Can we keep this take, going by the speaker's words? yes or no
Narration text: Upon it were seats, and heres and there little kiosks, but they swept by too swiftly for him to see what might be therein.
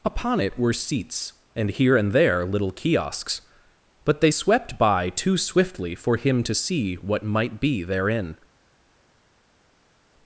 no